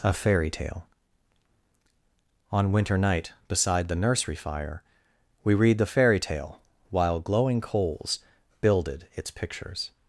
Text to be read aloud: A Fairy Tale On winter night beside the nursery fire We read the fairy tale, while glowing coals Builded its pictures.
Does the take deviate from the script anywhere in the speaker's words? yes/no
no